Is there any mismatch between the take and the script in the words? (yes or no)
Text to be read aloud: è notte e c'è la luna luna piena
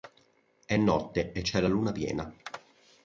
yes